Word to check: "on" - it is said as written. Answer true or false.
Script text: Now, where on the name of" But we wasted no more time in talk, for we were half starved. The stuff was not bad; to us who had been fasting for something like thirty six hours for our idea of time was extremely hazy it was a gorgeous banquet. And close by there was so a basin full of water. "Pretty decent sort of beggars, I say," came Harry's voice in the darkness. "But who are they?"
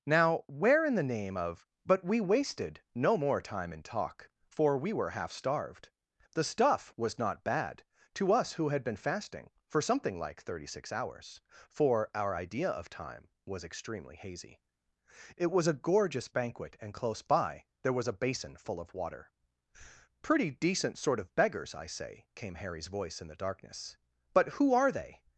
false